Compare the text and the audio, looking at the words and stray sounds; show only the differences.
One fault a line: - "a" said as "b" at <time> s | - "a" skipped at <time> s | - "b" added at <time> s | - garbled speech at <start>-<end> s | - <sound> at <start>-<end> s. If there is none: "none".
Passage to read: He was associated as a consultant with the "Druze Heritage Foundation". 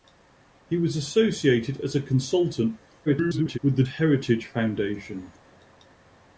- garbled speech at 3.1-3.6 s
- "Druze" skipped at 3.8 s